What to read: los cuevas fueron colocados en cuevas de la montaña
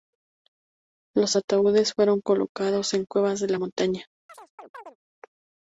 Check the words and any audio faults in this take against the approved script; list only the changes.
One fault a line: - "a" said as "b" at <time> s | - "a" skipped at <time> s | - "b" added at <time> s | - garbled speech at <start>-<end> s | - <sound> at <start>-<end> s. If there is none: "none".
- "cuevas" said as "ataúdes" at 1.3 s
- chirp at 4.3-5.0 s